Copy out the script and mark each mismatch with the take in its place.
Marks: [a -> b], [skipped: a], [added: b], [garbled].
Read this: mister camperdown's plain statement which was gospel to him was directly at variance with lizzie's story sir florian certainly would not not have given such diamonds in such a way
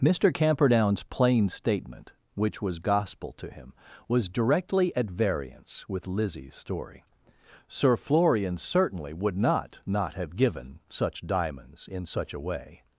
mister camperdown's plain statement which was gospel to him was directly at variance with lizzie's story sir florian certainly would not not have given such diamonds in such a way